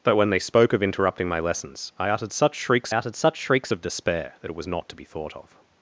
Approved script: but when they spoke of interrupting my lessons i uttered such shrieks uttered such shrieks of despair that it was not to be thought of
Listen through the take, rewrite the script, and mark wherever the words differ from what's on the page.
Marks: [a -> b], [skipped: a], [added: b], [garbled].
but when they spoke of interrupting my lessons i uttered such shrieks uttered such shrieks of despair that it was not to be thought of